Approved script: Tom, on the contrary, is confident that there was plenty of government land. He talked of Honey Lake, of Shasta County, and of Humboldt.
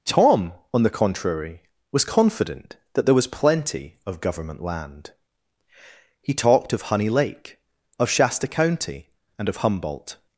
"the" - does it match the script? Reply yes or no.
yes